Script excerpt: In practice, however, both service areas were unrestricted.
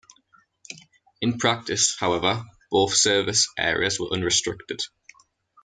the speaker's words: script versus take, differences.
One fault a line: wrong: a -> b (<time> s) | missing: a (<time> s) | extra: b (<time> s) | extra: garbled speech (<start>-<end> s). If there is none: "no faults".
no faults